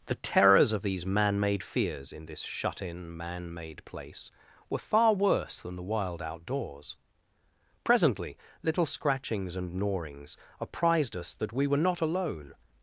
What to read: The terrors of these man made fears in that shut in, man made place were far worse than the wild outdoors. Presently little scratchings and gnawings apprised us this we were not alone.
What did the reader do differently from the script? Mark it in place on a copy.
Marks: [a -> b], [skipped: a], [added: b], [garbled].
The terrors of these man made fears in [that -> this] shut in, man made place were far worse than the wild outdoors. Presently little scratchings and gnawings apprised us [this -> that] we were not alone.